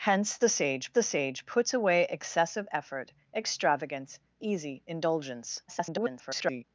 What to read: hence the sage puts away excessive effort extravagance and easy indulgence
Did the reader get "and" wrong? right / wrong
wrong